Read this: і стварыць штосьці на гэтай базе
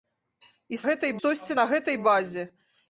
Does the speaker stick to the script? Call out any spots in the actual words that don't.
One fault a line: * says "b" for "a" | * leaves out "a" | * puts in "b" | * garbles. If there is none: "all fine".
* says "гэтай" for "стварыць"